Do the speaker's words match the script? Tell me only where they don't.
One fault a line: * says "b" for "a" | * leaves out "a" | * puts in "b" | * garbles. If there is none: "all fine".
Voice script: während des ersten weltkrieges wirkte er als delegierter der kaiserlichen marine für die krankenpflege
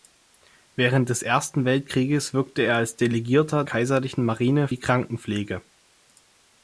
* leaves out "der"
* leaves out "für"